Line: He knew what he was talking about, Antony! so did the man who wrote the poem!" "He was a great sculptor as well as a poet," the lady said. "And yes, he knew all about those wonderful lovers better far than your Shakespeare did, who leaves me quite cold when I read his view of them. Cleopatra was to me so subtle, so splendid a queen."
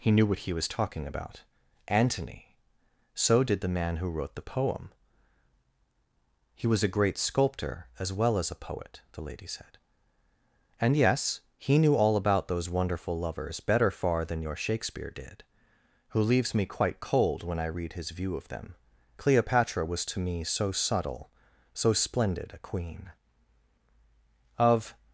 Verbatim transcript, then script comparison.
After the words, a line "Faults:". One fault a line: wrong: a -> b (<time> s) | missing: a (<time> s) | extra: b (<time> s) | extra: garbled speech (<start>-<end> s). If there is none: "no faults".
He knew what he was talking about, Antony! so did the man who wrote the poem!" "He was a great sculptor as well as a poet," the lady said. "And yes, he knew all about those wonderful lovers better far than your Shakespeare did, who leaves me quite cold when I read his view of them. Cleopatra was to me so subtle, so splendid a queen." "Of
Faults:
extra: Of (24.6 s)